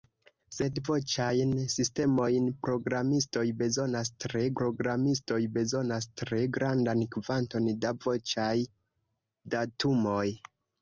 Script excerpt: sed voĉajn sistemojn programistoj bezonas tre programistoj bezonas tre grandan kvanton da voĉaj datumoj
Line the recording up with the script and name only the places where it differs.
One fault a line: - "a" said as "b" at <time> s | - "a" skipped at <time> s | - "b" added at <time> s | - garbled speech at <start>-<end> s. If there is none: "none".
none